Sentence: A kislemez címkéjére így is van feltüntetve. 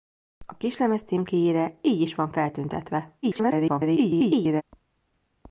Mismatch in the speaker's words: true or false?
true